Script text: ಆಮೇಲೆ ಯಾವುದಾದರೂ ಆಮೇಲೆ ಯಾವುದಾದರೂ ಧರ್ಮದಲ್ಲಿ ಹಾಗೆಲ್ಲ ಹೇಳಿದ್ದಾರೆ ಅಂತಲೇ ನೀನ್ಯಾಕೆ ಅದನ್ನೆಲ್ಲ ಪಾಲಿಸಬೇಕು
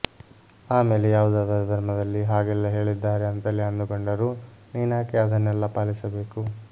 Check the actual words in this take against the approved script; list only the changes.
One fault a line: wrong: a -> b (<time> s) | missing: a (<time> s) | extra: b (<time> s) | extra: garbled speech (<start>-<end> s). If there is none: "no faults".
missing: ಆಮೇಲೆ ಯಾವುದಾದರೂ (1.6 s)
extra: ಅಂದುಕೊಂಡರೂ (3.6 s)